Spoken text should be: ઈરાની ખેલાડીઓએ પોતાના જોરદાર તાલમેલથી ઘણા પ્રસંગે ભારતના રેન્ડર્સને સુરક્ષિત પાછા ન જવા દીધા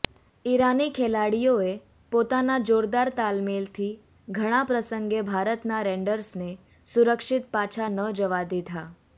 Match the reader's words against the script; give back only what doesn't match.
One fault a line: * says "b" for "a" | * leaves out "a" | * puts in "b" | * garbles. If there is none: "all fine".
all fine